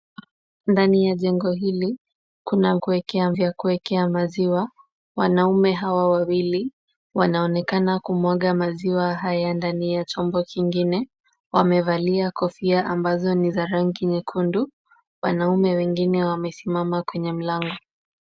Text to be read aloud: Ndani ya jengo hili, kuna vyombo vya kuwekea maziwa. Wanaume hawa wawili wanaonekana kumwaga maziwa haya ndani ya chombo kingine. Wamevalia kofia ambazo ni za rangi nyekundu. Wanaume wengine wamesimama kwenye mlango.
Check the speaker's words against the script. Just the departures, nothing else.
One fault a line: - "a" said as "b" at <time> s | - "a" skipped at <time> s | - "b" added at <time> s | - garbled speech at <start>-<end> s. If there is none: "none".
- "vyombo" said as "kuwekea" at 2.8 s